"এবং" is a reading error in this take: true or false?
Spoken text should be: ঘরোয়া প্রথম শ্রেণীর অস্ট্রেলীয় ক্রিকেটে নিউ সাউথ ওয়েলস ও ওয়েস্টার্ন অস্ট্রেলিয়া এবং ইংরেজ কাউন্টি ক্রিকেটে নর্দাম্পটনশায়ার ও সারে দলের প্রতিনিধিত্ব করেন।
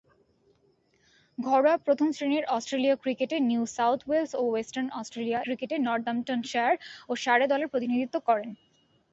true